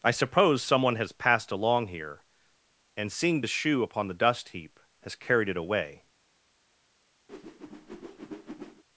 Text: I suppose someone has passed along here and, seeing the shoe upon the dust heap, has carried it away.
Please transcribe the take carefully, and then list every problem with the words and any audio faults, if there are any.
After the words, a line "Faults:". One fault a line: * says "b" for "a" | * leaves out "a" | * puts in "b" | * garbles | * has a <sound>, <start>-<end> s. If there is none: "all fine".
I suppose someone has passed along here and, seeing the shoe upon the dust heap, has carried it away.
Faults:
* has a whoosh, 7.3-8.8 s